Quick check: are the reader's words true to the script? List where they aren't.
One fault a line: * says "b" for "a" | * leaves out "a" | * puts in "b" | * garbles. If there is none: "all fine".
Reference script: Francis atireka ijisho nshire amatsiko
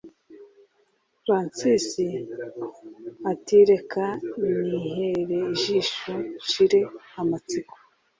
* puts in "nihere"